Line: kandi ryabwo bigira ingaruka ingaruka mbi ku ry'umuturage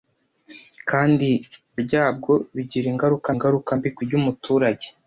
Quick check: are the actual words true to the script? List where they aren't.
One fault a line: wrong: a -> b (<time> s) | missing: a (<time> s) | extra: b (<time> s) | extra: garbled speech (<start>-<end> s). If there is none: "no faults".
no faults